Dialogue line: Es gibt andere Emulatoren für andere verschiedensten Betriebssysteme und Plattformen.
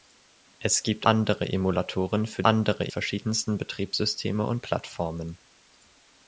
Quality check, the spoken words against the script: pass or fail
pass